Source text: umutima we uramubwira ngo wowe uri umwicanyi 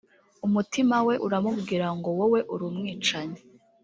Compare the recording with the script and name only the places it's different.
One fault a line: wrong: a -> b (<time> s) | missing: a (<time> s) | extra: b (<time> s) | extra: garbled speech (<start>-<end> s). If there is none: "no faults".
no faults